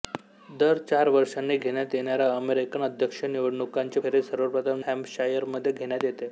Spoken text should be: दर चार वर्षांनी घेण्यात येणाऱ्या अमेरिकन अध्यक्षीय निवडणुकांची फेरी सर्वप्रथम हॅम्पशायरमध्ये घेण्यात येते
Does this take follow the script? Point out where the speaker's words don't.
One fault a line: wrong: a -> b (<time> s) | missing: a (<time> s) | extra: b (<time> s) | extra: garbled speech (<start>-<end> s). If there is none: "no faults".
no faults